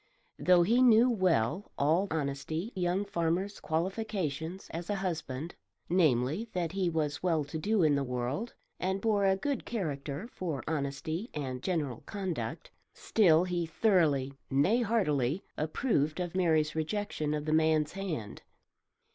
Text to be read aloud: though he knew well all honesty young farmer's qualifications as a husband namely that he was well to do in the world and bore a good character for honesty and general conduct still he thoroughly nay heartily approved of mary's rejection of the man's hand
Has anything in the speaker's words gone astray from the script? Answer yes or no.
no